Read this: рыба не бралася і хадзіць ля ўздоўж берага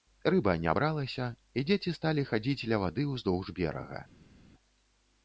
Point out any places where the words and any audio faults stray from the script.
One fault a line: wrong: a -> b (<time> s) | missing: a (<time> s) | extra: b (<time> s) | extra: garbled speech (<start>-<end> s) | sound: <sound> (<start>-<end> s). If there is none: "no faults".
extra: дзеці сталі (1.7 s)
extra: вады (2.8 s)